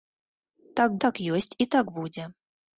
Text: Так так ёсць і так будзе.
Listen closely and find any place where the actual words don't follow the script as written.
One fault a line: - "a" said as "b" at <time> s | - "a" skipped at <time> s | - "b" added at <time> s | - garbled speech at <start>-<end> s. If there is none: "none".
none